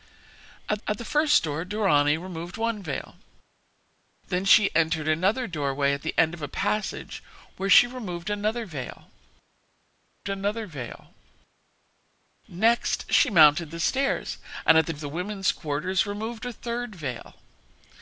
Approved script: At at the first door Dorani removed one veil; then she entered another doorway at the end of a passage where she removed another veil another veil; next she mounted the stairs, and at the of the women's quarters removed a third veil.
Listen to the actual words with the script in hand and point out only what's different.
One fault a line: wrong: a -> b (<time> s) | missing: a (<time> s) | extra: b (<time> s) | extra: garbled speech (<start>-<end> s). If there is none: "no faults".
no faults